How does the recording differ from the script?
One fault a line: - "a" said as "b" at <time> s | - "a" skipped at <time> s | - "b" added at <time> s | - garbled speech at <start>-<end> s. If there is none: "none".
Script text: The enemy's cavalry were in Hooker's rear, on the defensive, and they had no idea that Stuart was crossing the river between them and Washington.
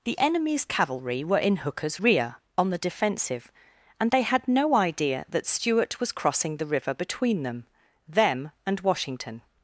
- "them" added at 8.1 s